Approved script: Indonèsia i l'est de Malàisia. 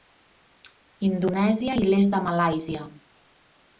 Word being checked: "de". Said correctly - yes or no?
yes